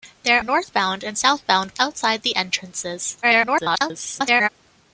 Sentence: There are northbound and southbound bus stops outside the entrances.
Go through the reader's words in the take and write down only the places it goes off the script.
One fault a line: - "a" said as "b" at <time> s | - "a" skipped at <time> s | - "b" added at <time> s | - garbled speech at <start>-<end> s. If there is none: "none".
- "are" skipped at 0.4 s
- "bus stops" skipped at 1.8 s
- garbled speech at 3.2-4.5 s